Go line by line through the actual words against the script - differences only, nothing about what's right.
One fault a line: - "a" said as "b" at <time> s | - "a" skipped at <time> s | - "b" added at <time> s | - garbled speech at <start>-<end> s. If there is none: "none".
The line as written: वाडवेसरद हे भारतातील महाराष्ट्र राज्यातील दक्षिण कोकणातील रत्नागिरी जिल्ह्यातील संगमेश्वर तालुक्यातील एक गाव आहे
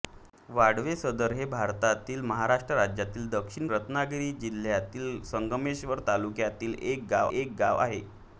- "कोकणातील" skipped at 3.7 s
- "एक गाव" added at 7.3 s